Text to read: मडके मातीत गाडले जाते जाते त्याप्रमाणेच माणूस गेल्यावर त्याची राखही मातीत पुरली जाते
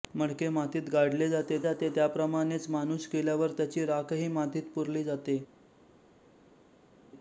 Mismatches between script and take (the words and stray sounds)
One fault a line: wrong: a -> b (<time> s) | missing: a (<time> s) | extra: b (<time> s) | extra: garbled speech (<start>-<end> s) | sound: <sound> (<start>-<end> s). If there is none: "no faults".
no faults